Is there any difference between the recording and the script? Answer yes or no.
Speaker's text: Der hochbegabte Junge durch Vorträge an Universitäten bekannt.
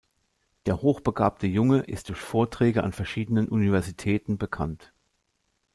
yes